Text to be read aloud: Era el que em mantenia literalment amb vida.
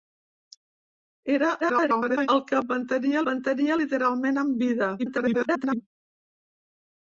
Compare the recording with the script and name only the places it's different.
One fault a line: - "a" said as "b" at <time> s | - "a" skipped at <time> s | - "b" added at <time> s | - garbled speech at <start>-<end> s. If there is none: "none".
- garbled speech at 1.6-2.3 s
- "mantenia" added at 3.3 s
- garbled speech at 5.0-5.8 s